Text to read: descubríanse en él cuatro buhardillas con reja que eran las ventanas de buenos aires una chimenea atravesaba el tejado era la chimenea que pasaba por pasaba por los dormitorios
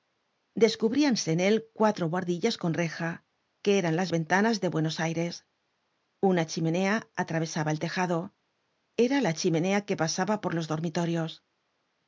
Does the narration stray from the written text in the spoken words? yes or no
yes